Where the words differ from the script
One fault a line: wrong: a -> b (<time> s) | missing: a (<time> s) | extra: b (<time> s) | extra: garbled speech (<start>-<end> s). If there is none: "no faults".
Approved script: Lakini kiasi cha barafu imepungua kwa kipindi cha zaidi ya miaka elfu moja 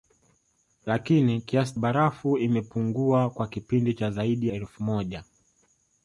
missing: cha (1.8 s)
missing: ya miaka (4.5 s)